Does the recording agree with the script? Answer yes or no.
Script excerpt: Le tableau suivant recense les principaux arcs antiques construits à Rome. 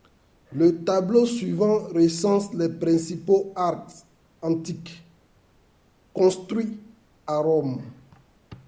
yes